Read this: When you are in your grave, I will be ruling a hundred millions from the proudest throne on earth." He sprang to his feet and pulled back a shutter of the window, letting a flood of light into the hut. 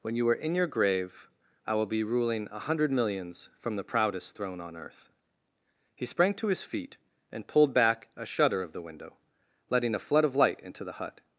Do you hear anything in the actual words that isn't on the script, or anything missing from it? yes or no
no